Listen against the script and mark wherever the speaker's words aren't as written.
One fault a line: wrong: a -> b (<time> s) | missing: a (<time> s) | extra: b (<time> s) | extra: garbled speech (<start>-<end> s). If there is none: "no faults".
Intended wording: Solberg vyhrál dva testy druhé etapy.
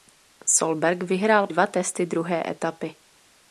no faults